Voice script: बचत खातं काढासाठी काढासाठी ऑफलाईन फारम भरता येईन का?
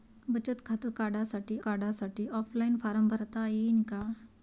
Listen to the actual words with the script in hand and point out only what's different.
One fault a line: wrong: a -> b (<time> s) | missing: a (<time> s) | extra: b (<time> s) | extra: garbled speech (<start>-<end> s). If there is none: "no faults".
no faults